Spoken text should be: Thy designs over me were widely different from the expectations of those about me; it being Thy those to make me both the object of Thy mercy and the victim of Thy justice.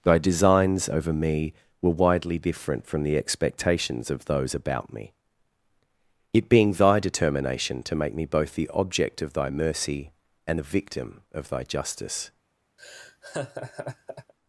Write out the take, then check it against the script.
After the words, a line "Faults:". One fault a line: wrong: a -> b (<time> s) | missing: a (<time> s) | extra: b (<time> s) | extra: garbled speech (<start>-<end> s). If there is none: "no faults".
Thy designs over me were widely different from the expectations of those about me; it being Thy determination to make me both the object of Thy mercy and the victim of Thy justice.
Faults:
wrong: those -> determination (7.0 s)